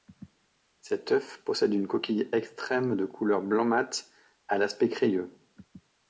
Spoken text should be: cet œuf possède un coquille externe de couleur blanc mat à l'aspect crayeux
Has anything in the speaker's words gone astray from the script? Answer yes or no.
yes